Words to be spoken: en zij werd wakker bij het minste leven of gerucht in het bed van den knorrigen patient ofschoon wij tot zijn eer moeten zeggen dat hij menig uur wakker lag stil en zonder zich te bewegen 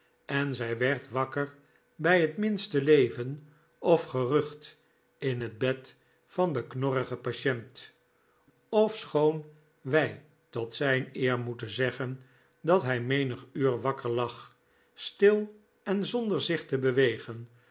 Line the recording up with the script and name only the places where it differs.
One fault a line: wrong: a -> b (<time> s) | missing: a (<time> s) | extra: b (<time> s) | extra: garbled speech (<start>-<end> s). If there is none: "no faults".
no faults